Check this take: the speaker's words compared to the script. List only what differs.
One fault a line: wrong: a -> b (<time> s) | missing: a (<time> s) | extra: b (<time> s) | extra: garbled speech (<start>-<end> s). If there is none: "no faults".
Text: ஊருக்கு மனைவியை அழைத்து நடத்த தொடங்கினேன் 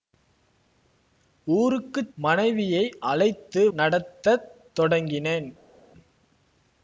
no faults